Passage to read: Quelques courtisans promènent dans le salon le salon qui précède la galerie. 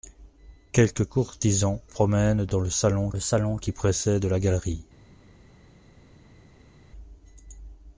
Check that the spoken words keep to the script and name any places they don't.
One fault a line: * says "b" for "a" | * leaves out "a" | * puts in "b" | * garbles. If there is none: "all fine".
all fine